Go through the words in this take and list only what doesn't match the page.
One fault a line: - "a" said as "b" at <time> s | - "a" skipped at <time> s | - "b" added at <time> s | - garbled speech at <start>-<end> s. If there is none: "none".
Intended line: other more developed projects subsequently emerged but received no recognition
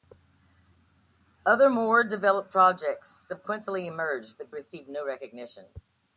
none